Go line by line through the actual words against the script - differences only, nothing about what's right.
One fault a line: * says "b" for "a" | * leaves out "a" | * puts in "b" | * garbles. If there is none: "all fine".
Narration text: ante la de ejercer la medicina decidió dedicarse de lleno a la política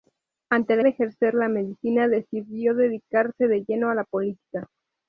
all fine